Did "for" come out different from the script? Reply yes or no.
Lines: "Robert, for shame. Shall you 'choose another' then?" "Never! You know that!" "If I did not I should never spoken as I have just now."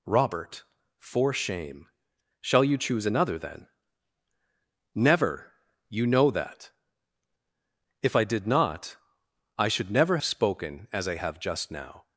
no